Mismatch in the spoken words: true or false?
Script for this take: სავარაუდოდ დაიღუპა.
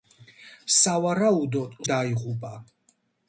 false